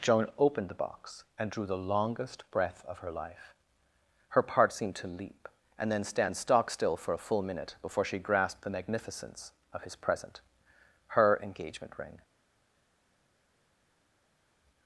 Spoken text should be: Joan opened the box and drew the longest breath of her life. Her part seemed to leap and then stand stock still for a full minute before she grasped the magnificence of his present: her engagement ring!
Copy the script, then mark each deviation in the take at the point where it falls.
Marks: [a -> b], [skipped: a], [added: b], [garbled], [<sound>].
Joan opened the box and drew the longest breath of her life. Her part seemed to leap and then stand stock still for a full minute before she grasped the magnificence of his present: her engagement ring!